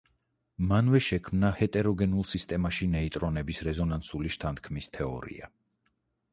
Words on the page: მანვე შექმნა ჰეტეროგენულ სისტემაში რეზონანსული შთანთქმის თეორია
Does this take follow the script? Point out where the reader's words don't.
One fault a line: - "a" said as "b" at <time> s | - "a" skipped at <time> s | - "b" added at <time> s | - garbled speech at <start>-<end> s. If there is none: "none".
- "ნეიტრონების" added at 3.0 s